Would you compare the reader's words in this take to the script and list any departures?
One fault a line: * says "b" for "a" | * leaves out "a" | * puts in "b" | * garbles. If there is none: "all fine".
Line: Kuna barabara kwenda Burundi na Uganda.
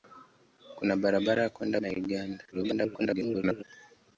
* leaves out "Burundi"
* garbles